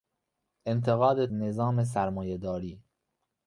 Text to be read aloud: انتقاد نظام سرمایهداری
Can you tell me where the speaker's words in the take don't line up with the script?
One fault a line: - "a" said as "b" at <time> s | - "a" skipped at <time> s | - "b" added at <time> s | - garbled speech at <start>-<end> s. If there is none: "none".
none